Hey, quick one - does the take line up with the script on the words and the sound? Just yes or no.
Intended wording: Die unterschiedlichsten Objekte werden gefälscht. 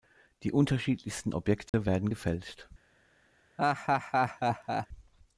no